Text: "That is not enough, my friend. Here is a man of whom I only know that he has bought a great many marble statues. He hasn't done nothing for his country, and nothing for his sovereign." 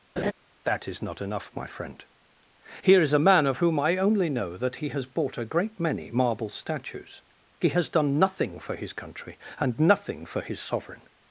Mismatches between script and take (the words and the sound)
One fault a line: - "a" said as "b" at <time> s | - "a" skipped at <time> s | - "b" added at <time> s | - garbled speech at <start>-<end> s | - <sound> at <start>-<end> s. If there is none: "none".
- laugh at 0.2-0.3 s
- "hasn't" said as "has" at 7.7 s